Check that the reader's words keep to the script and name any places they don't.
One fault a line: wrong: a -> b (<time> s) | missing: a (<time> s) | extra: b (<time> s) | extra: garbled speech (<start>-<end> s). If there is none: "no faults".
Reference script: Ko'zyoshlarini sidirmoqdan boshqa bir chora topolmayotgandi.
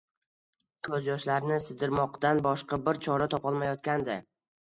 no faults